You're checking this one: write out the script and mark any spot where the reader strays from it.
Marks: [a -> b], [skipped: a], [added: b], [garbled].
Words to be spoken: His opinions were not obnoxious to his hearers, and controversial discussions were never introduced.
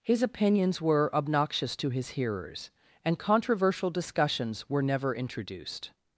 His opinions were [skipped: not] obnoxious to his hearers, and controversial discussions were never introduced.